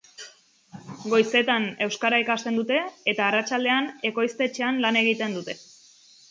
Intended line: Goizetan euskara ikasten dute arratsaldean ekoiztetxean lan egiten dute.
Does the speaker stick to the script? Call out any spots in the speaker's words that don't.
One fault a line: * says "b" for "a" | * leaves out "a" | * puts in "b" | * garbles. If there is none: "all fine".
* puts in "eta"